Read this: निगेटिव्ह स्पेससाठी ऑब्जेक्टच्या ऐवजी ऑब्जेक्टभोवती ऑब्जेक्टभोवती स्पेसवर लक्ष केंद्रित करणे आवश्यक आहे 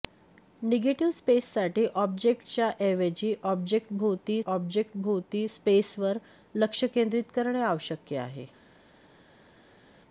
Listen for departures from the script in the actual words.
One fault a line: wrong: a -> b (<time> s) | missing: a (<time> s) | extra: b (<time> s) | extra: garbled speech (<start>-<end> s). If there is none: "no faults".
no faults